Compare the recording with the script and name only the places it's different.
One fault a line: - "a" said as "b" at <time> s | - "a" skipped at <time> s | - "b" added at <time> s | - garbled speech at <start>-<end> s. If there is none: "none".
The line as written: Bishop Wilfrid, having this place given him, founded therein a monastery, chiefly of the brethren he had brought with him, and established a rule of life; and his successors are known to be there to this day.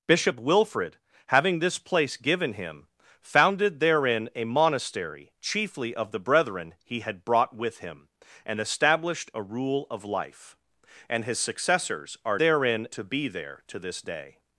- "known" said as "therein" at 12.4 s